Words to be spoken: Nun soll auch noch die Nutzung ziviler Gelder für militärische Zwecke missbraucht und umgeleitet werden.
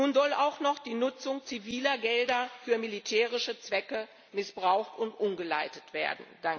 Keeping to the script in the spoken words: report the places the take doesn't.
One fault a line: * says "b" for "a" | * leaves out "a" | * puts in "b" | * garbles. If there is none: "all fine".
all fine